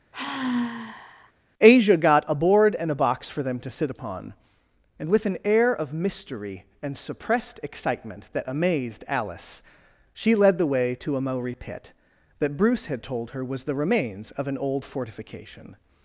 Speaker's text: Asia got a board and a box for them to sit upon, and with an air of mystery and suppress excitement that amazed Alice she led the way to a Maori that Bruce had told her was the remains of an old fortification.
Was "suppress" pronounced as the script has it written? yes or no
no